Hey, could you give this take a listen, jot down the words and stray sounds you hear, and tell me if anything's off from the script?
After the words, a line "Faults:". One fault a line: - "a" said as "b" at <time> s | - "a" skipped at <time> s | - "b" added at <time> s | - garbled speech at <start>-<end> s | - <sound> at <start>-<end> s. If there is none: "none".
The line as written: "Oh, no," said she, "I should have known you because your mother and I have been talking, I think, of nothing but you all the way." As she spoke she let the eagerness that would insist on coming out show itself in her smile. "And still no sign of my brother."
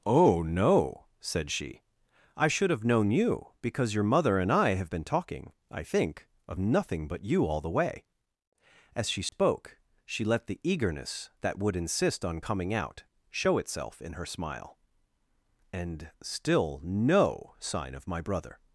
"Oh, no," said she, "I should have known you because your mother and I have been talking, I think, of nothing but you all the way." As she spoke she let the eagerness that would insist on coming out show itself in her smile. "And still no sign of my brother."
Faults:
- dropout at 9.3-9.3 s